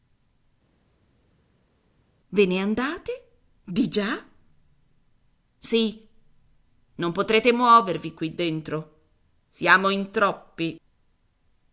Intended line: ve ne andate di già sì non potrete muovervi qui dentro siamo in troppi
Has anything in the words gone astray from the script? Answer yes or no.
no